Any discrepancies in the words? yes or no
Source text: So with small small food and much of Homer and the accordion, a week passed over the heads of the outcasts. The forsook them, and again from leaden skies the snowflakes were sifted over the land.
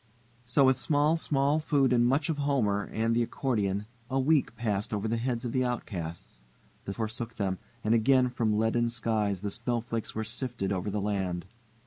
no